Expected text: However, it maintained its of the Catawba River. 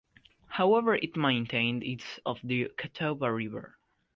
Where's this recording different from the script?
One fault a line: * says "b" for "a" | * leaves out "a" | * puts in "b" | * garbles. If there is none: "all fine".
all fine